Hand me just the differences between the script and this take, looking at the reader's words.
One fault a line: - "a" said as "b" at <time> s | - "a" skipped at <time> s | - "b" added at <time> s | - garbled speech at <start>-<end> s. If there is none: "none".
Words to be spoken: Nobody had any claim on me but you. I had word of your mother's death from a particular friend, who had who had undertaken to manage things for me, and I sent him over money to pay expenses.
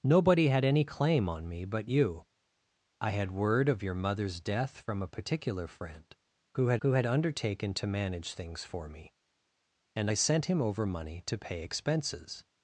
none